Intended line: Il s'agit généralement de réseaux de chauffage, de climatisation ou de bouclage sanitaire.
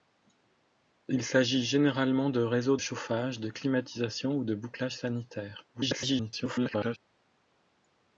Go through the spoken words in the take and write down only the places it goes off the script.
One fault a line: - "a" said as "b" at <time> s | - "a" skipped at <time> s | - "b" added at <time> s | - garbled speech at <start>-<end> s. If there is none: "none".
- "de" skipped at 2.8 s
- garbled speech at 5.7-7.0 s